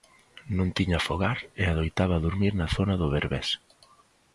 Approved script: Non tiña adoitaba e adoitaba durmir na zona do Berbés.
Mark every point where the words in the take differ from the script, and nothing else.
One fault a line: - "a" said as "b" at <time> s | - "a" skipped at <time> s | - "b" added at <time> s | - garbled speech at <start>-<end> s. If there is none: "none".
- "adoitaba" said as "fogar" at 1.1 s